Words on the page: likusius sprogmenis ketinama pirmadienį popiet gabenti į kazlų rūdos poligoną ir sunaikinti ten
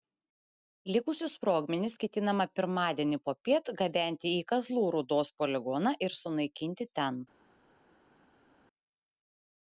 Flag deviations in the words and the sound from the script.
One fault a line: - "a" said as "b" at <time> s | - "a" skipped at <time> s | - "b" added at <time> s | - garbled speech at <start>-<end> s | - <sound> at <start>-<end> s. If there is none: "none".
none